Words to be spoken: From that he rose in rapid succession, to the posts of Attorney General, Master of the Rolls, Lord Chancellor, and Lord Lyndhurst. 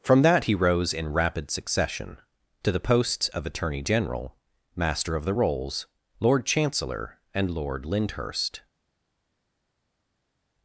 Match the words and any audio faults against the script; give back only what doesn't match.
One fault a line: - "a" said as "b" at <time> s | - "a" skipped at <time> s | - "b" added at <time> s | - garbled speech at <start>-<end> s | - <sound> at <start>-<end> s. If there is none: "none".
none